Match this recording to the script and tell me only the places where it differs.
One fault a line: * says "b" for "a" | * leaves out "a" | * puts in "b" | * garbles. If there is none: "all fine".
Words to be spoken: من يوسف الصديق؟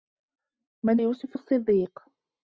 all fine